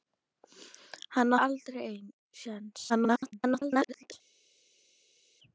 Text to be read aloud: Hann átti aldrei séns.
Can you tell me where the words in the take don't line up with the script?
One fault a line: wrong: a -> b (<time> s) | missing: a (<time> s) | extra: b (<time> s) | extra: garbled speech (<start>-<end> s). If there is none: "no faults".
missing: átti (1.3 s)
extra: garbled speech (2.9-4.1 s)